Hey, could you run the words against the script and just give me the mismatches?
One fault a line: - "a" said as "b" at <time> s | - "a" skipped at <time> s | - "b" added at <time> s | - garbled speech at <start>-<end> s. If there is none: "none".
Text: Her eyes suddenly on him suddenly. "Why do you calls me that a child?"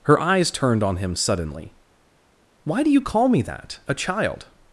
- "suddenly" said as "turned" at 0.5 s
- "calls" said as "call" at 3.0 s